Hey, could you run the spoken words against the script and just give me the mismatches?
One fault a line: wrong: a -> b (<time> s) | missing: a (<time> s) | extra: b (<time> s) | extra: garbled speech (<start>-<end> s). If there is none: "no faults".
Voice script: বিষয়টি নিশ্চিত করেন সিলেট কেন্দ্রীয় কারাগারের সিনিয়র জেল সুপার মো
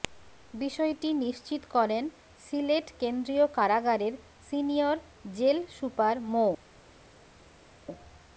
no faults